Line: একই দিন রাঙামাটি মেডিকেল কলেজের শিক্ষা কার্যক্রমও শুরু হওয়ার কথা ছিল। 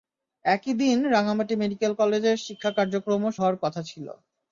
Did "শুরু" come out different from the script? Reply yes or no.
yes